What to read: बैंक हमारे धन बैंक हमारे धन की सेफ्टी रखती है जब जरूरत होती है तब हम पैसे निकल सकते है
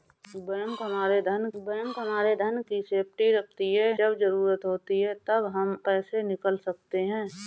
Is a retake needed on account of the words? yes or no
no